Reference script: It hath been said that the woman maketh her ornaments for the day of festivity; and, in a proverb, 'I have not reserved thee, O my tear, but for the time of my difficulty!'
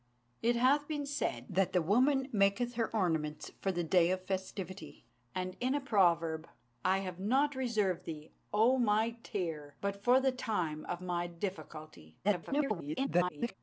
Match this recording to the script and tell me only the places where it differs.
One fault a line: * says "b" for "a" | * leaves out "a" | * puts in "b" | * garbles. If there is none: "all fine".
* garbles